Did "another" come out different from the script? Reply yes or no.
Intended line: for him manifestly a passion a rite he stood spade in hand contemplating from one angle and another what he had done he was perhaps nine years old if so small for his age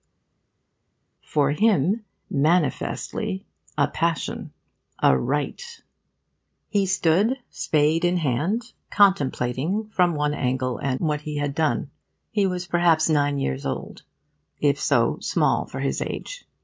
yes